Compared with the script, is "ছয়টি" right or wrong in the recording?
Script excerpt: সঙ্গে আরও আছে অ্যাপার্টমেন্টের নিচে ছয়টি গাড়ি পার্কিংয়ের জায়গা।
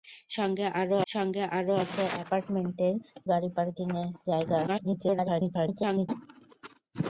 wrong